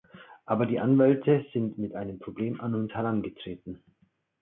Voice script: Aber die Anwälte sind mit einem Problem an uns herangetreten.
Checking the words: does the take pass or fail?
pass